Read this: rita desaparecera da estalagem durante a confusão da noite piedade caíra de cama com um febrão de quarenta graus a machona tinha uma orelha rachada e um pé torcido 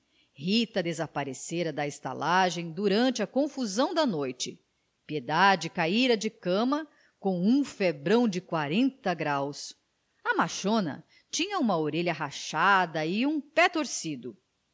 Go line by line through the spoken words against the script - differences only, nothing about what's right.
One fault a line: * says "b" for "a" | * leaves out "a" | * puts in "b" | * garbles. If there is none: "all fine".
all fine